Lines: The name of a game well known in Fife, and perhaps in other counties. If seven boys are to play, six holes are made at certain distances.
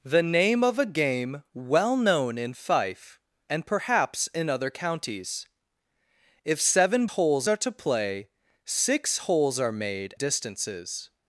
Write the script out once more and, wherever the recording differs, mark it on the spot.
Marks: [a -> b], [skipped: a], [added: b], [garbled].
The name of a game well known in Fife, and perhaps in other counties. If seven [boys -> holes] are to play, six holes are made [skipped: at certain] distances.